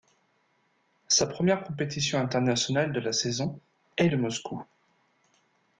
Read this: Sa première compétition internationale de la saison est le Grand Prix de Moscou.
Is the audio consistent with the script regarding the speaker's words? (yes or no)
no